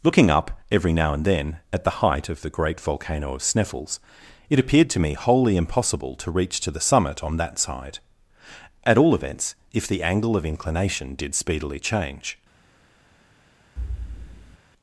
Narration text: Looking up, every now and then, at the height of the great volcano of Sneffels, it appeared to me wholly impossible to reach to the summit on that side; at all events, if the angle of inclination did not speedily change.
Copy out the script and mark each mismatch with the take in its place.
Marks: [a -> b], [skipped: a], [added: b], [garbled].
Looking up, every now and then, at the height of the great volcano of Sneffels, it appeared to me wholly impossible to reach to the summit on that side; at all events, if the angle of inclination did [skipped: not] speedily change.